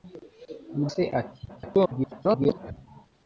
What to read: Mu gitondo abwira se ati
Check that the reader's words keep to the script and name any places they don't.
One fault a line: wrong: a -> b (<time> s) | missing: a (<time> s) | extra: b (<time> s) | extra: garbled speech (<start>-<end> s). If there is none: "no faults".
missing: gitondo abwira (0.8 s)
extra: garbled speech (1.5-2.7 s)